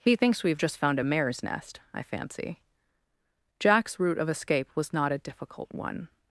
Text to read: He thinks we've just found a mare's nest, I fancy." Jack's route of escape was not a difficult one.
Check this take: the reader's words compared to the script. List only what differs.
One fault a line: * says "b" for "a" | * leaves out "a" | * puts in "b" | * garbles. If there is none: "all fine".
all fine